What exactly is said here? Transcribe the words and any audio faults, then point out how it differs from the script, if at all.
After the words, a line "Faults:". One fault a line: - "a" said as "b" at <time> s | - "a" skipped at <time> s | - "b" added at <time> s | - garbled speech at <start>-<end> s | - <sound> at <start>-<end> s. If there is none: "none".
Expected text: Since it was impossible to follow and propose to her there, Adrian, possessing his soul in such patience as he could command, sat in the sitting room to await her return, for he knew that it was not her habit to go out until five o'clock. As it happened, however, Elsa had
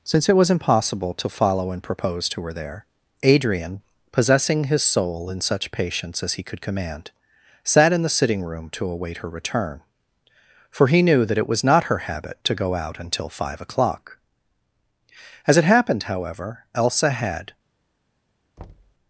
Since it was impossible to follow and propose to her there, Adrian, possessing his soul in such patience as he could command, sat in the sitting room to await her return, for he knew that it was not her habit to go out until five o'clock. As it happened, however, Elsa had
Faults:
- thud at 18.6-18.9 s